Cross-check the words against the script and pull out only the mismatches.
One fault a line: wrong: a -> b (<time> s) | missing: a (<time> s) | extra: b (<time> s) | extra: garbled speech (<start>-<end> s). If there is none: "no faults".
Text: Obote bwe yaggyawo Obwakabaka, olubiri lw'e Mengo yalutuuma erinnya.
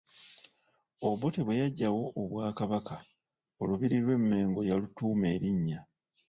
no faults